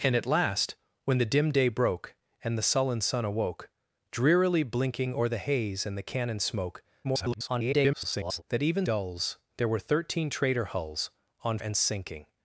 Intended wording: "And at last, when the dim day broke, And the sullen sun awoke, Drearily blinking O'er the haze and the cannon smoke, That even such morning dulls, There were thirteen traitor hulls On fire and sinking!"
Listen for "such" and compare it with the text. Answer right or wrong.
wrong